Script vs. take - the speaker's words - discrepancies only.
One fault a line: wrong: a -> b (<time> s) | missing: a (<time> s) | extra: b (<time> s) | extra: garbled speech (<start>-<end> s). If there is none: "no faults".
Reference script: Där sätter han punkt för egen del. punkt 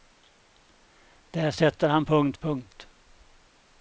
missing: för egen del (2.4 s)